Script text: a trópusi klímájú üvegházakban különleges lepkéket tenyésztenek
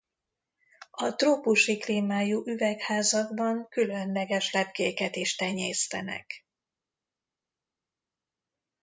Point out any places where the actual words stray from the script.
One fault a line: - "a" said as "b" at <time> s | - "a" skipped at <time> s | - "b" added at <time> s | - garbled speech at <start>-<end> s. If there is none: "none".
- "is" added at 5.1 s